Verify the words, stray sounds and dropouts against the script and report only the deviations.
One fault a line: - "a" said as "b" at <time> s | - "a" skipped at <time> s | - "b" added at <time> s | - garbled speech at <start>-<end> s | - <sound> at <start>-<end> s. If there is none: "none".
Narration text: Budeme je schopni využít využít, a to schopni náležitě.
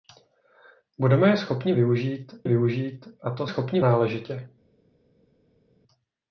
none